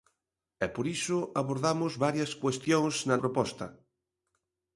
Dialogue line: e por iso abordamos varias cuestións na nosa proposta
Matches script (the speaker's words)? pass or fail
fail